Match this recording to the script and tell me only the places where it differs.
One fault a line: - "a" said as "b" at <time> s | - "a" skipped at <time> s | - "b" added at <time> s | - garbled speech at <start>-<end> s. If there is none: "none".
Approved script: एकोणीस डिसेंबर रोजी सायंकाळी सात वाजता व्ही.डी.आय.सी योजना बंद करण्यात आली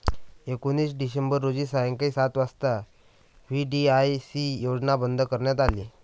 none